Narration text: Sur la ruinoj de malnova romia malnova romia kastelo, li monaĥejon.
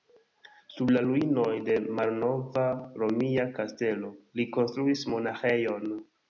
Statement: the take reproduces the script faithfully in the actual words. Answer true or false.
false